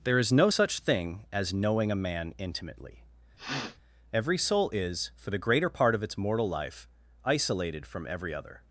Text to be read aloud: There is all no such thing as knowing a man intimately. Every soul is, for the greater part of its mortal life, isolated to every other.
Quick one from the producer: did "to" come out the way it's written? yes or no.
no